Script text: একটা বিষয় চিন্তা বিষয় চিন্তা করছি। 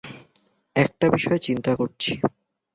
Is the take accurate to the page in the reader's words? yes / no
no